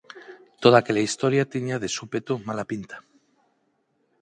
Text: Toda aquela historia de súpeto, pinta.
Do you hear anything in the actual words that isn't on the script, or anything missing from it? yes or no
yes